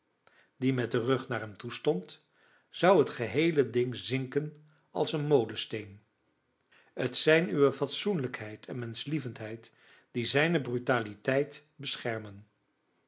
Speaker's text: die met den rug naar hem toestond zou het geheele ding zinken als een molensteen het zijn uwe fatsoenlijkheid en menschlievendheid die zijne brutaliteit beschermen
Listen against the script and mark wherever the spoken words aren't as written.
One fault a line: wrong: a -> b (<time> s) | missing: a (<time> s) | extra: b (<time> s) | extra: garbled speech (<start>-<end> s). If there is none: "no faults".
no faults